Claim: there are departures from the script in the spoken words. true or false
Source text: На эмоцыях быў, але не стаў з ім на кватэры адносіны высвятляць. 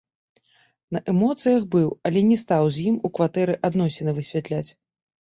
true